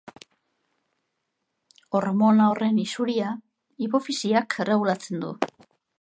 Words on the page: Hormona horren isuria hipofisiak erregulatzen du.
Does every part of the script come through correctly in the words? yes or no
yes